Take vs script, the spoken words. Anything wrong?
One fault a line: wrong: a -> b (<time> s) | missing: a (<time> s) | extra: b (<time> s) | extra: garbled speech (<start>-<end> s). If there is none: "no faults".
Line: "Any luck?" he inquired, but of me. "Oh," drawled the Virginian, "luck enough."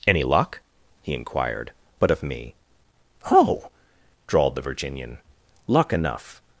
no faults